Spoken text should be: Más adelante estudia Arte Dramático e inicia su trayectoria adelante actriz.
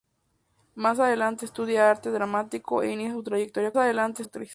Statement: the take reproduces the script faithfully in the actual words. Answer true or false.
true